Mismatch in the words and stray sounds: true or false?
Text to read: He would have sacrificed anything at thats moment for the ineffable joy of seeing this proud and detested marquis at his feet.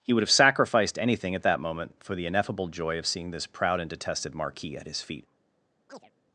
true